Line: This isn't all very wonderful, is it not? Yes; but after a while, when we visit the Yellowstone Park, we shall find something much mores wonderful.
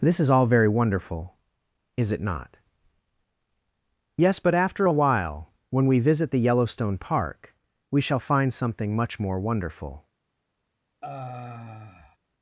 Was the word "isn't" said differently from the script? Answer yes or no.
yes